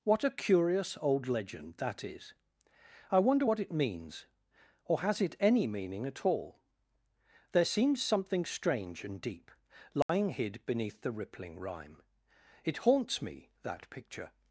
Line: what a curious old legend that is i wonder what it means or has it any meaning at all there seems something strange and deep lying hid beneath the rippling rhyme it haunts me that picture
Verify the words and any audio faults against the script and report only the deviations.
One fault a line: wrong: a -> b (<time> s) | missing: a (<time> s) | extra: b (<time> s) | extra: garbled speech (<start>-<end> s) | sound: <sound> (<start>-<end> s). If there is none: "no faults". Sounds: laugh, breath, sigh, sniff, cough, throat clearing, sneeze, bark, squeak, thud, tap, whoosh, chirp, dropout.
sound: dropout (10.0-10.1 s)